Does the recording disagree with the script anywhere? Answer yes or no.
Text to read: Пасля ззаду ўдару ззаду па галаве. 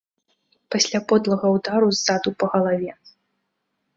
yes